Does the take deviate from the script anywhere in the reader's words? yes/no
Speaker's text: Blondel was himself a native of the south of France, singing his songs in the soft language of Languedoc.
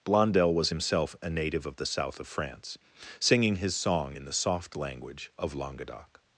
yes